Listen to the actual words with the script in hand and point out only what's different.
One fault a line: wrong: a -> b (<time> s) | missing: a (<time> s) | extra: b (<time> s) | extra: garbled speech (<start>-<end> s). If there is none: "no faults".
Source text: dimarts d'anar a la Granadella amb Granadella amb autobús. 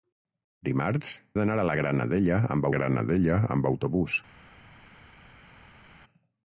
no faults